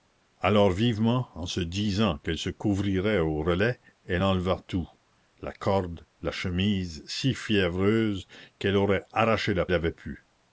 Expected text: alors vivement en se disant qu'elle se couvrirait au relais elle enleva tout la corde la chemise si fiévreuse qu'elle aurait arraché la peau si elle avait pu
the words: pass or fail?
fail